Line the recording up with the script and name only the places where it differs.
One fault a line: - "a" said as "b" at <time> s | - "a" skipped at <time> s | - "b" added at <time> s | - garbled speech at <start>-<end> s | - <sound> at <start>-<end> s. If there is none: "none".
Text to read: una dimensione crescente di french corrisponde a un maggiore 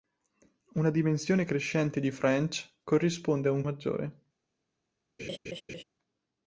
- laugh at 5.2-5.8 s